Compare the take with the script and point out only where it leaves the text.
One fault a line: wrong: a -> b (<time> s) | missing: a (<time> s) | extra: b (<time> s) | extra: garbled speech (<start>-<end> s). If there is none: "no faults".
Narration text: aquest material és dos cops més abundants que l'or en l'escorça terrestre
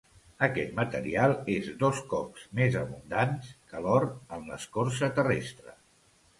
no faults